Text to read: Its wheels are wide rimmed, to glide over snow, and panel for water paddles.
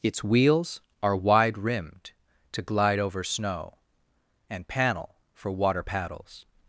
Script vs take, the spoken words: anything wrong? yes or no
no